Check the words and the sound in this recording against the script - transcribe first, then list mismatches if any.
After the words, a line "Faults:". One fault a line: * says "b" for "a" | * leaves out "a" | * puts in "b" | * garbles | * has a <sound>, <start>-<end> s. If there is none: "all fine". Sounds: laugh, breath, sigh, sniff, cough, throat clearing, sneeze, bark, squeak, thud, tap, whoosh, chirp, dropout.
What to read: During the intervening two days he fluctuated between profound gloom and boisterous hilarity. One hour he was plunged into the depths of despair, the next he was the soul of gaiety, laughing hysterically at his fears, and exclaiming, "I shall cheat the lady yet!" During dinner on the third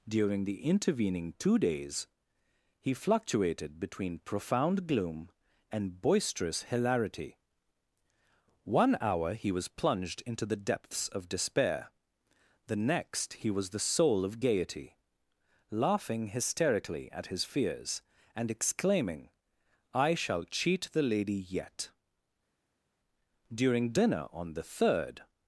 During the intervening two days he fluctuated between profound gloom and boisterous hilarity. One hour he was plunged into the depths of despair, the next he was the soul of gaiety, laughing hysterically at his fears, and exclaiming, "I shall cheat the lady yet!" During dinner on the third
Faults:
all fine